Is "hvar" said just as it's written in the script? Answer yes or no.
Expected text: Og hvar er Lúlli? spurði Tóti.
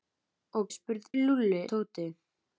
no